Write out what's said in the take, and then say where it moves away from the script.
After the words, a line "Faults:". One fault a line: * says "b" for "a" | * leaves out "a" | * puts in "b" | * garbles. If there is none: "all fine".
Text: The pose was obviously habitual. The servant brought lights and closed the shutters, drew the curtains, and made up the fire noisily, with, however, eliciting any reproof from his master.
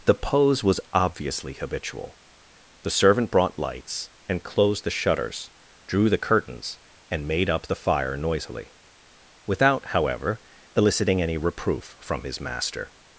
The pose was obviously habitual. The servant brought lights and closed the shutters, drew the curtains, and made up the fire noisily, without, however, eliciting any reproof from his master.
Faults:
* says "without" for "with"